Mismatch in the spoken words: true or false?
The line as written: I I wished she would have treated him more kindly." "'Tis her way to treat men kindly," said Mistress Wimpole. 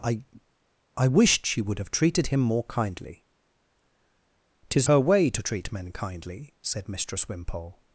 false